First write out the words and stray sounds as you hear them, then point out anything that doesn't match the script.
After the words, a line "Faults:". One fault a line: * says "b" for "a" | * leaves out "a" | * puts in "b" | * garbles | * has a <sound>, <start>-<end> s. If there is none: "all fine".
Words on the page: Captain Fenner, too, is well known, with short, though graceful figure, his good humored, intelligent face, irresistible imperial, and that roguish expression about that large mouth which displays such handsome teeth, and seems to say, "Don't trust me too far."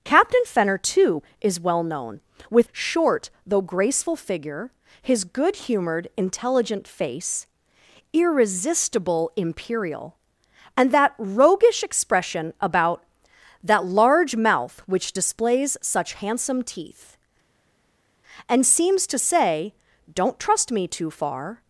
Captain Fenner, too, is well known, with short, though graceful figure, his good humored, intelligent face, irresistible imperial, and that roguish expression about that large mouth which displays such handsome teeth, and seems to say, "Don't trust me too far."
Faults:
all fine